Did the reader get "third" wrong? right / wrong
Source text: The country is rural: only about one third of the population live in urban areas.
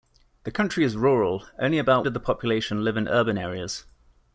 wrong